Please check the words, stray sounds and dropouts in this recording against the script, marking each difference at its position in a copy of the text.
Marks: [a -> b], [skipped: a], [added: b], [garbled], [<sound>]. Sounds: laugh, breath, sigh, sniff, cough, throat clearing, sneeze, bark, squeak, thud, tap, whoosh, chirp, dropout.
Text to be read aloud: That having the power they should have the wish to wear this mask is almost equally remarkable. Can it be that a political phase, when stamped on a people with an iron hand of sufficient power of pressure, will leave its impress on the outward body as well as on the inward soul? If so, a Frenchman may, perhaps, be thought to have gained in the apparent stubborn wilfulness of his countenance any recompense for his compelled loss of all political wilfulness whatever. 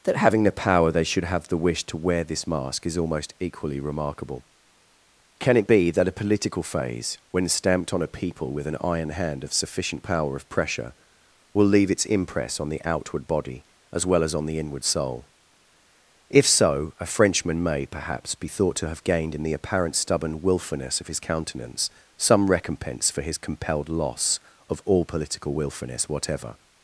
That having the power they should have the wish to wear this mask is almost equally remarkable. Can it be that a political phase, when stamped on a people with an iron hand of sufficient power of pressure, will leave its impress on the outward body as well as on the inward soul? If so, a Frenchman may, perhaps, be thought to have gained in the apparent stubborn wilfulness of his countenance [any -> some] recompense for his compelled loss of all political wilfulness whatever.